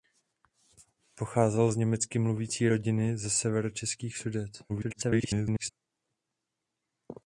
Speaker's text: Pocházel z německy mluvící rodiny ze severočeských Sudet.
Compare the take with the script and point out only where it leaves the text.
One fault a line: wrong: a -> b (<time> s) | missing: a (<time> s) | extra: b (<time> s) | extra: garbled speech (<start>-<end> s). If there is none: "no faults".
extra: garbled speech (4.7-5.7 s)